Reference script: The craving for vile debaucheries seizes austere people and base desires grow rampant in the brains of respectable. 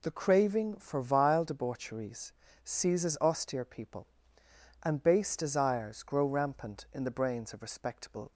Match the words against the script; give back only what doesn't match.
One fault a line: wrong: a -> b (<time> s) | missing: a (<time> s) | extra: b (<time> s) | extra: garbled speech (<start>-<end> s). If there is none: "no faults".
no faults